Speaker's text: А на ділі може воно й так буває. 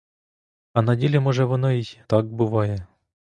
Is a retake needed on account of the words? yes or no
no